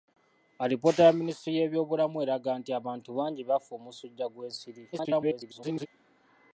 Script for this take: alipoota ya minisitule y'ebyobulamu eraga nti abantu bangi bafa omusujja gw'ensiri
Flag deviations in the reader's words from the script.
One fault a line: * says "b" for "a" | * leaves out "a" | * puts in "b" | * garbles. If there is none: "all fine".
* garbles